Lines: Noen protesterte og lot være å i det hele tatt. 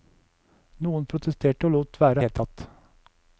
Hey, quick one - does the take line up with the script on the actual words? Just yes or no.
yes